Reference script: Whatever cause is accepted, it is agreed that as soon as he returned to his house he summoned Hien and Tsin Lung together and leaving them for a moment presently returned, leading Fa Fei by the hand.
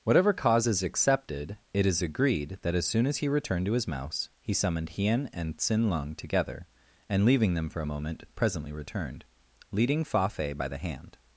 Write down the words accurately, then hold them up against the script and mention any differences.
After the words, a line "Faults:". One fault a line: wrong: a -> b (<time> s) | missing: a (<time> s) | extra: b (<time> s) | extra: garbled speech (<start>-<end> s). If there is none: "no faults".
Whatever cause is accepted, it is agreed that as soon as he returned to his mouse he summoned Hien and Tsin Lung together and leaving them for a moment presently returned, leading Fa Fei by the hand.
Faults:
wrong: house -> mouse (3.9 s)